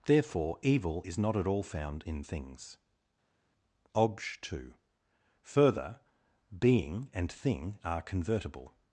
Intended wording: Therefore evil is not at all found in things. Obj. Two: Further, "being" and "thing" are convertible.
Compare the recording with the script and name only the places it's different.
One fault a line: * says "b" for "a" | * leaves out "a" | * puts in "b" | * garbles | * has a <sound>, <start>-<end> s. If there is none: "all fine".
all fine